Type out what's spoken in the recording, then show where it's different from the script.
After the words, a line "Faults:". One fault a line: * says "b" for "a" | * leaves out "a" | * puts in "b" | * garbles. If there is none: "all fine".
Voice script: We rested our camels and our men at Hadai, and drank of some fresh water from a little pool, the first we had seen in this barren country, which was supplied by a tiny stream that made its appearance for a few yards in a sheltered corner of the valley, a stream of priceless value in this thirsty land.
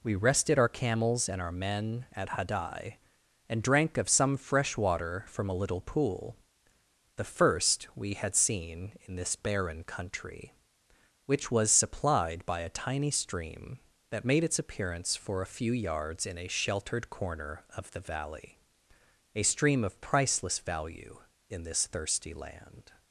We rested our camels and our men at Hadai, and drank of some fresh water from a little pool, the first we had seen in this barren country, which was supplied by a tiny stream that made its appearance for a few yards in a sheltered corner of the valley, a stream of priceless value in this thirsty land.
Faults:
all fine